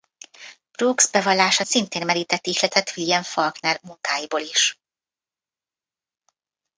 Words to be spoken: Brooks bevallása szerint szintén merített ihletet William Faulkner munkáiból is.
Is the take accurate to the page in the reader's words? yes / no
no